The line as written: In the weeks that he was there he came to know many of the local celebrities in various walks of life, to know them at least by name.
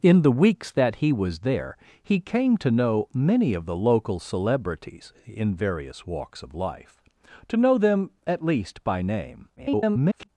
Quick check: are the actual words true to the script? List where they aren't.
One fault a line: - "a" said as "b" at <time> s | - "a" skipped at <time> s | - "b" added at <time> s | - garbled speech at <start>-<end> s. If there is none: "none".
- garbled speech at 9.6-10.3 s